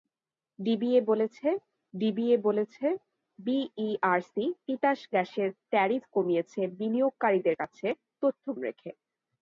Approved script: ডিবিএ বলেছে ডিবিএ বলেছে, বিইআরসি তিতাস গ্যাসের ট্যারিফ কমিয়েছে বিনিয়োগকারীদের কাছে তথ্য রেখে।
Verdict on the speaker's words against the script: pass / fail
pass